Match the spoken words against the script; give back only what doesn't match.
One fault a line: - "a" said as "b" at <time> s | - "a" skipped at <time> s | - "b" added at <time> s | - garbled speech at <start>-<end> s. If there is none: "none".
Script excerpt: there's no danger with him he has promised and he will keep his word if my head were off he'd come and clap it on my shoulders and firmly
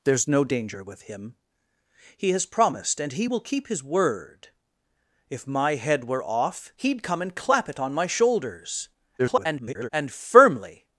- garbled speech at 9.2-9.9 s